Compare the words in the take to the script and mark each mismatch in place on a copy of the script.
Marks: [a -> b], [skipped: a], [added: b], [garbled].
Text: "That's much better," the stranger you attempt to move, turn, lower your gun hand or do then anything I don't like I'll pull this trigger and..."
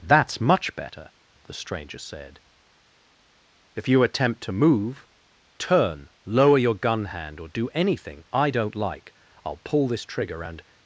"That's much better," the stranger [added: said If] you attempt to move, turn, lower your gun hand or do [skipped: then] anything I don't like I'll pull this trigger and..."